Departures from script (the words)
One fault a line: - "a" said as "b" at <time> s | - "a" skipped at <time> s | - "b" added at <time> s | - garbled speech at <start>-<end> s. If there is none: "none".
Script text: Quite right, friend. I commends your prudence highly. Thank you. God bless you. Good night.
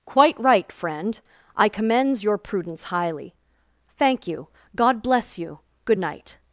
none